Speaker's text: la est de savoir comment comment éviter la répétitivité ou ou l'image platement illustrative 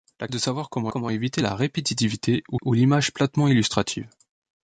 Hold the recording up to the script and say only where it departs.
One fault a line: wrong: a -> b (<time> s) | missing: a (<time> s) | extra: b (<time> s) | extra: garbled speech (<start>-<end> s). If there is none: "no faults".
no faults